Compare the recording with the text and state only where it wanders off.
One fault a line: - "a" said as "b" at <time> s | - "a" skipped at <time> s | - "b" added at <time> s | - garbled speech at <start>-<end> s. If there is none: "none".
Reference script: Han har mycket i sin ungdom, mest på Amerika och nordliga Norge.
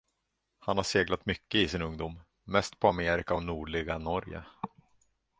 - "seglat" added at 0.8 s